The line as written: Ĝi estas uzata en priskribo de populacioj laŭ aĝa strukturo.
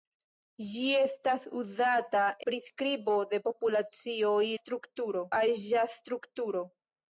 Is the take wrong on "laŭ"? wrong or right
wrong